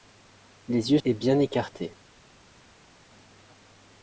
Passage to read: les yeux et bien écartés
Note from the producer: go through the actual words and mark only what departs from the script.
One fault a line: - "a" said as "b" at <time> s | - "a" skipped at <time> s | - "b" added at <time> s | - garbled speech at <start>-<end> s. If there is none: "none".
none